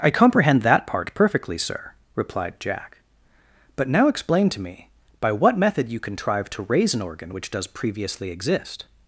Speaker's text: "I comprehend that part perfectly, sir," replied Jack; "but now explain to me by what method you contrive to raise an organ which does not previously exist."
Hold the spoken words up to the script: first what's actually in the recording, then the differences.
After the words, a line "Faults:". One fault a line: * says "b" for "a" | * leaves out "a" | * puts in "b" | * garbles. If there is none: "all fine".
"I comprehend that part perfectly, sir," replied Jack; "but now explain to me by what method you contrive to raise an organ which does previously exist."
Faults:
* leaves out "not"